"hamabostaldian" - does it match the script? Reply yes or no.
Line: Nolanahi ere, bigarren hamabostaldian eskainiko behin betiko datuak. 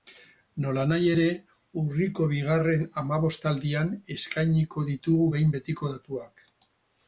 yes